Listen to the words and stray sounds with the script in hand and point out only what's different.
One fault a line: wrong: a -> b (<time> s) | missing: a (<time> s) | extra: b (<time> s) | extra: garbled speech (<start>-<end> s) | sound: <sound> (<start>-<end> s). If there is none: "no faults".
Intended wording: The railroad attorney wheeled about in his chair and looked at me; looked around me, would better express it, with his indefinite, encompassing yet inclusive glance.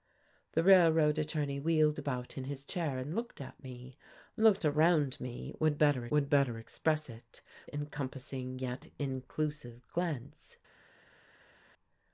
extra: would better (6.1 s)
missing: with his indefinite (7.4 s)